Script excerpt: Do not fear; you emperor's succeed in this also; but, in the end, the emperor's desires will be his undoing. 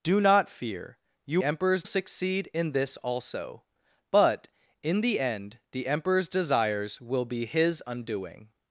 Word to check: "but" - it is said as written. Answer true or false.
true